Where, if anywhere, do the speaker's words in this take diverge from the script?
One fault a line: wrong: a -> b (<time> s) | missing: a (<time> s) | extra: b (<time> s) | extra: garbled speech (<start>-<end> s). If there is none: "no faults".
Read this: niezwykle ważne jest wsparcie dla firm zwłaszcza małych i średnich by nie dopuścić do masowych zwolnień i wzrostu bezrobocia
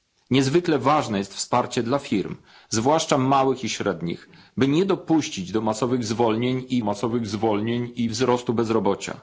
extra: masowych zwolnień i (6.8 s)